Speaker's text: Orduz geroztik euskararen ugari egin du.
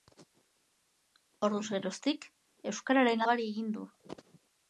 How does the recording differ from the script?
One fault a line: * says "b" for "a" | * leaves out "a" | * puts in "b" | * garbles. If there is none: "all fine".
all fine